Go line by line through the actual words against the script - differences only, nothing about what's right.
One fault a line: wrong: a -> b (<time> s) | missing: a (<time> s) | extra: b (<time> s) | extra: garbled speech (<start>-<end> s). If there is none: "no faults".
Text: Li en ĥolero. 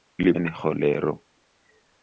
no faults